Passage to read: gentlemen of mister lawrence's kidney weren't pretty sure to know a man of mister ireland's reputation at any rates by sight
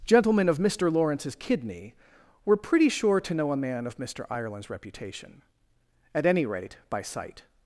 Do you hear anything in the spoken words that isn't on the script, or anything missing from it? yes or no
yes